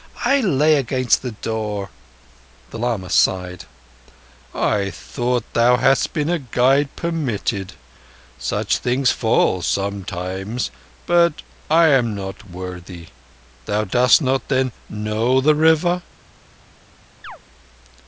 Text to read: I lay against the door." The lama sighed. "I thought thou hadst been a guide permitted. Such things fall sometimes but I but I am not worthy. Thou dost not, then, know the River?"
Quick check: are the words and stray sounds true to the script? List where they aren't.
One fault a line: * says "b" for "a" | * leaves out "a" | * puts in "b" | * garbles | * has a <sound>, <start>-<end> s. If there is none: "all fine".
* leaves out "but I"
* has a chirp, 17.2-17.4 s